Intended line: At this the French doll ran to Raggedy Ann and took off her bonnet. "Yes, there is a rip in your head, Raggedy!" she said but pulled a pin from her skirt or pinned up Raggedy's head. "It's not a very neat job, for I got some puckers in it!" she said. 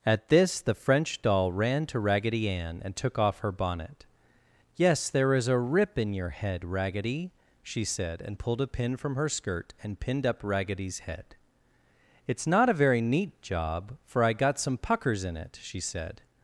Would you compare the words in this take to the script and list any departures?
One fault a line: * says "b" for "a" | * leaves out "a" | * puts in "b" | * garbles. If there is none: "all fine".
* says "and" for "but"
* says "and" for "or"